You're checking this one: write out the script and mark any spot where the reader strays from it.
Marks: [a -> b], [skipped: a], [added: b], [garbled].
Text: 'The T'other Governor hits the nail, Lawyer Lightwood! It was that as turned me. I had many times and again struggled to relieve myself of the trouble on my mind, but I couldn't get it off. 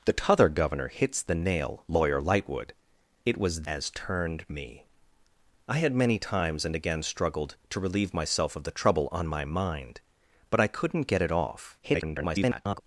'The T'other Governor hits the nail, Lawyer Lightwood! It was [skipped: that] as turned me. I had many times and again struggled to relieve myself of the trouble on my mind, but I couldn't get it off. [garbled]